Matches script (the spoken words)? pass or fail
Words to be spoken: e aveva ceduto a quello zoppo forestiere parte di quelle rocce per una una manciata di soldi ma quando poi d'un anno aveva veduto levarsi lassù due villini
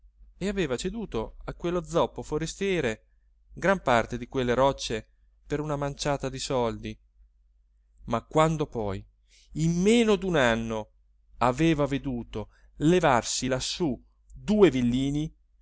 fail